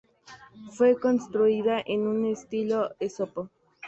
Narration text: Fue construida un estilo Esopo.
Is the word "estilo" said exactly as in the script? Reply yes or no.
yes